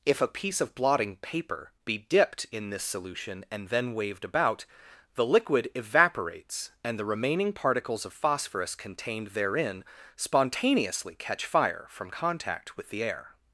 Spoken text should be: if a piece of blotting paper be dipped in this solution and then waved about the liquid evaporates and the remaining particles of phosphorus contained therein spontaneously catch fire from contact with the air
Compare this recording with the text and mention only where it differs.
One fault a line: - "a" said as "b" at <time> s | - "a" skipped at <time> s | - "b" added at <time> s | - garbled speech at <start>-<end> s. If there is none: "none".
none